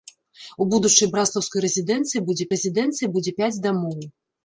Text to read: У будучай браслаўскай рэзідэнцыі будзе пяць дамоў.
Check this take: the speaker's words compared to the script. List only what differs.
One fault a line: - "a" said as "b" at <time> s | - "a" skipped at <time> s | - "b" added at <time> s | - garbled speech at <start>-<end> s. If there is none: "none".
- "рэзідэнцыі будзе" added at 2.6 s